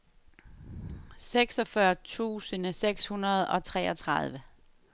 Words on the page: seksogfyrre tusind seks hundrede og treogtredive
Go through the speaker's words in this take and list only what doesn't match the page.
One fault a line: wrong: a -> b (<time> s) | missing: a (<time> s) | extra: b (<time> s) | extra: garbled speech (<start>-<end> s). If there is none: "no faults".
no faults